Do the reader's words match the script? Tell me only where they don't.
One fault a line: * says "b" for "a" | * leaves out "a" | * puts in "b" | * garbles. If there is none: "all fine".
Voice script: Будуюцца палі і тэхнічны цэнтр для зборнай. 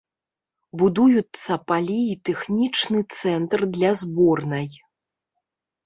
all fine